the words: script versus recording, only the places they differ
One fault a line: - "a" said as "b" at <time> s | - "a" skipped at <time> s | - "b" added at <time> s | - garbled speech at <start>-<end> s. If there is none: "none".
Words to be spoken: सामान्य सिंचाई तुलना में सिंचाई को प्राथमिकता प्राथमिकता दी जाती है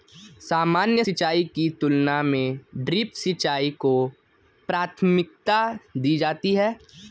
- "की" added at 1.5 s
- "ड्रिप" added at 2.8 s
- "प्राथमिकता" skipped at 5.6 s